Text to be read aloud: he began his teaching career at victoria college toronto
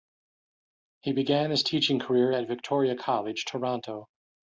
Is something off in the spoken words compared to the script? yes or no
no